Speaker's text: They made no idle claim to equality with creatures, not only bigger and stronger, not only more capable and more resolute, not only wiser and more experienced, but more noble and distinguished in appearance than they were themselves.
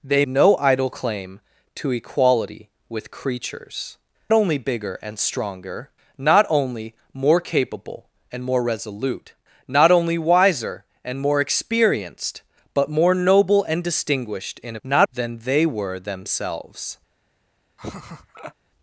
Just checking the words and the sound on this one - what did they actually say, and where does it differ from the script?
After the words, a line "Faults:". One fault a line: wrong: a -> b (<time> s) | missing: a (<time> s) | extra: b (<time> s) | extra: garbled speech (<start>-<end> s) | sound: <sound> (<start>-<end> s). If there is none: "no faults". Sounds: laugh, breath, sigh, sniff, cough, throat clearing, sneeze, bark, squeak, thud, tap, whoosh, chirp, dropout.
They no idle claim to equality with creatures, only bigger and stronger, not only more capable and more resolute, not only wiser and more experienced, but more noble and distinguished in not than they were themselves.
Faults:
missing: made (0.2 s)
missing: not (4.0 s)
wrong: appearance -> not (14.8 s)
sound: laugh (17.8-18.5 s)